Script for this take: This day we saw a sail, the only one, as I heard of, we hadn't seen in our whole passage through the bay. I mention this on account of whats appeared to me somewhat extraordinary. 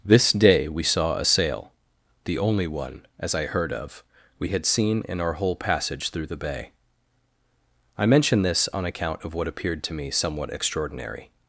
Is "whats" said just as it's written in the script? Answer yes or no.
no